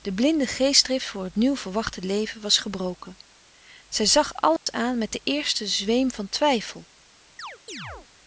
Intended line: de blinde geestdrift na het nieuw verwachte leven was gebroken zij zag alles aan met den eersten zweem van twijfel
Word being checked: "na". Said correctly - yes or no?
no